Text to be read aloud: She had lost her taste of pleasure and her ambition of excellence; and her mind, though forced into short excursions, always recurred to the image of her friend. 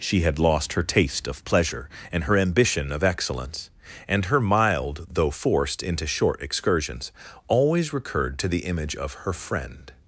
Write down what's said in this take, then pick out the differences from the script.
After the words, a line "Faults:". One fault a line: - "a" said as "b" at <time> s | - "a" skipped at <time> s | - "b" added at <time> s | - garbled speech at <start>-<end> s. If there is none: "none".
She had lost her taste of pleasure and her ambition of excellence; and her mild, though forced into short excursions, always recurred to the image of her friend.
Faults:
- "mind" said as "mild" at 4.4 s